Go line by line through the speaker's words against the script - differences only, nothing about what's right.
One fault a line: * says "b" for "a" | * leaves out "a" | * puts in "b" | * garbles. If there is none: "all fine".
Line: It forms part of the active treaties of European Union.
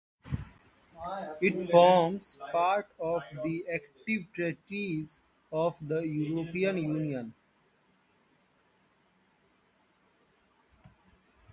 * puts in "the"